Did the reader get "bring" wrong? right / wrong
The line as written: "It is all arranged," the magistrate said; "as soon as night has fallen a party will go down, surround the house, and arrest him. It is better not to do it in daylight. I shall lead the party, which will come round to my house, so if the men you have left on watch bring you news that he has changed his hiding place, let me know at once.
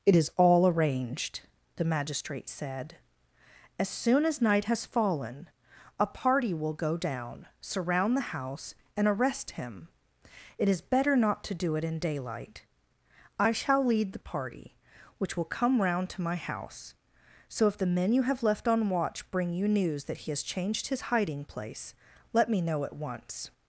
right